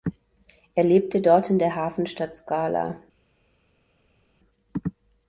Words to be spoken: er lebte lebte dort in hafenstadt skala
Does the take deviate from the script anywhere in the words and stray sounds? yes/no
yes